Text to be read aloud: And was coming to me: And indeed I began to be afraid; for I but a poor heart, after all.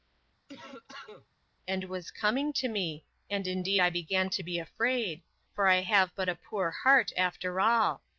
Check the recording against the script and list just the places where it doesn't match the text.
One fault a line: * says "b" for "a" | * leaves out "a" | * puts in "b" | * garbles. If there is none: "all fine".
* puts in "have"